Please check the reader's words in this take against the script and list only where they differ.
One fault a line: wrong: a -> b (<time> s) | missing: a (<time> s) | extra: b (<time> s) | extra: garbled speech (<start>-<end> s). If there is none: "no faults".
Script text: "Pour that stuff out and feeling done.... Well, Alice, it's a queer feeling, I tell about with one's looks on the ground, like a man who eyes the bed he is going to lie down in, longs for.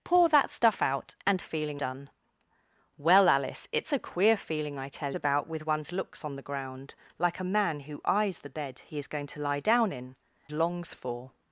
no faults